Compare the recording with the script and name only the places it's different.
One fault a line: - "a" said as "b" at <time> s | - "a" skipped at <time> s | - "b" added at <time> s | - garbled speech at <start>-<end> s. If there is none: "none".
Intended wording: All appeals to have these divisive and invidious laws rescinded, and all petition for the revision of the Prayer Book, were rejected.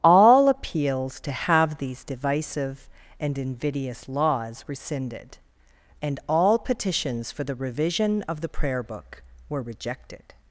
- "petition" said as "petitions" at 6.6 s